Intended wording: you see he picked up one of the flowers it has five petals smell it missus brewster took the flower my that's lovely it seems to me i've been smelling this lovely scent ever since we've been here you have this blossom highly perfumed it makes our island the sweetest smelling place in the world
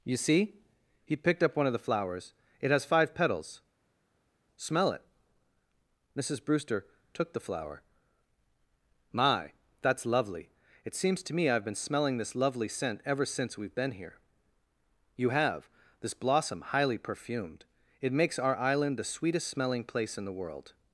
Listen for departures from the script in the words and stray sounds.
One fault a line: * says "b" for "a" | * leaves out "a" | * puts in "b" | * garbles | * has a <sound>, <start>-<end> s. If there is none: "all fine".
all fine